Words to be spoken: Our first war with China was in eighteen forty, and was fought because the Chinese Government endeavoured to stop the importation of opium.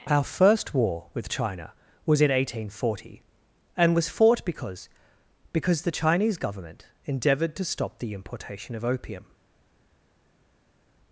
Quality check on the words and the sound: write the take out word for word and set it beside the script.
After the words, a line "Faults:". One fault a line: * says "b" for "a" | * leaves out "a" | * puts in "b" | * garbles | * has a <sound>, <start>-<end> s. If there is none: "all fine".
Our first war with China was in eighteen forty, and was fought because because the Chinese Government endeavoured to stop the importation of opium.
Faults:
* puts in "because"